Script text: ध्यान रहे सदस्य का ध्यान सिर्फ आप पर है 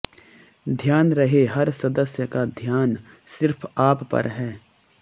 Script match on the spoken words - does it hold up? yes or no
no